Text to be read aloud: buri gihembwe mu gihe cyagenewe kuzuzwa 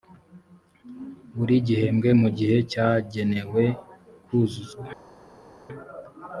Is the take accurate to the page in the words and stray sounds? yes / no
yes